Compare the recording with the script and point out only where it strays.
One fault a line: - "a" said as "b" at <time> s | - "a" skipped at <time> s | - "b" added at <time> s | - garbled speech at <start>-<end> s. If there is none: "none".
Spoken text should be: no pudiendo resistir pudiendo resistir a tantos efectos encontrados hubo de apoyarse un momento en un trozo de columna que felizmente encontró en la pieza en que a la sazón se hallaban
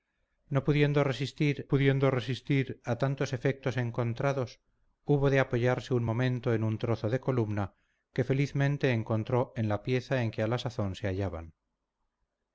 none